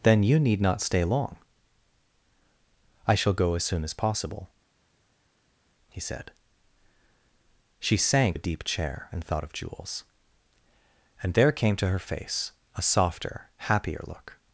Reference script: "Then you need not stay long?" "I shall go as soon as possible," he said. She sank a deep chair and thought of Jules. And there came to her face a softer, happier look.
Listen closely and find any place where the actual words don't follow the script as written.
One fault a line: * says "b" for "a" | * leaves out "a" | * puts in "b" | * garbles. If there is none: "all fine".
all fine